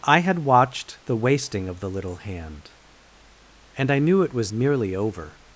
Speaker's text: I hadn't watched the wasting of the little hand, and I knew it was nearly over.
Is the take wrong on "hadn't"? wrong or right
wrong